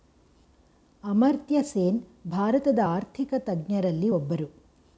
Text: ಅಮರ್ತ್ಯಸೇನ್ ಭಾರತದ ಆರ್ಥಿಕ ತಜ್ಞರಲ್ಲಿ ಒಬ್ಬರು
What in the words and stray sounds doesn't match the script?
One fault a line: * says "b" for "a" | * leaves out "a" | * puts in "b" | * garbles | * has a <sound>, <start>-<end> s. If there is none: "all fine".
all fine